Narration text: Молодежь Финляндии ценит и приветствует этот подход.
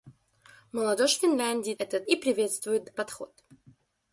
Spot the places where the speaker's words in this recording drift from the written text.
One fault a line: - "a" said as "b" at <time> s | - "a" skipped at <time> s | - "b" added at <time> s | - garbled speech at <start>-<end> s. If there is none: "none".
- "ценит" said as "этот" at 1.8 s
- "этот" skipped at 2.9 s